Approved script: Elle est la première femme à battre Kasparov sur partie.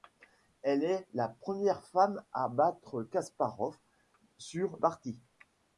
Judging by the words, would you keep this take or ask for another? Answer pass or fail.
pass